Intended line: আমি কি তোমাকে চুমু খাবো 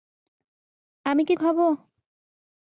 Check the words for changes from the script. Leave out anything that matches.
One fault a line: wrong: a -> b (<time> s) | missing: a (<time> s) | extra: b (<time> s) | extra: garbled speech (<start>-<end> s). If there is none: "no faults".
missing: তোমাকে চুমু (1.3 s)